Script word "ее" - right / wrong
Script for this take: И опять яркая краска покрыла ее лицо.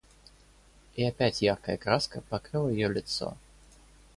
right